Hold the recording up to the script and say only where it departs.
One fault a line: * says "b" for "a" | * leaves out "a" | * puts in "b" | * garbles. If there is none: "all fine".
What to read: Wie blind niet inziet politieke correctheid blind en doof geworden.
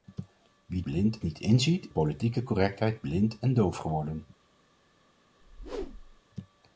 all fine